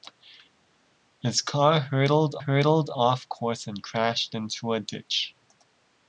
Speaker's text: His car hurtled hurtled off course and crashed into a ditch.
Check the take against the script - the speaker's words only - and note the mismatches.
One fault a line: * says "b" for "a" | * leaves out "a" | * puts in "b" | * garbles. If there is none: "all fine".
all fine